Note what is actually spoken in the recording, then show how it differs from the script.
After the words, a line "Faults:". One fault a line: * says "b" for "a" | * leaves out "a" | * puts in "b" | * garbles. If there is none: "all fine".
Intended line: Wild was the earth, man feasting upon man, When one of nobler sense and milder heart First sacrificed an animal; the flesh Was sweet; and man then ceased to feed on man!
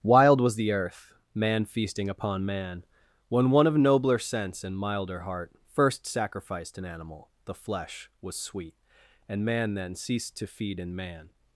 Wild was the earth, man feasting upon man, When one of nobler sense and milder heart First sacrificed an animal; the flesh Was sweet; and man then ceased to feed in man!
Faults:
* says "in" for "on"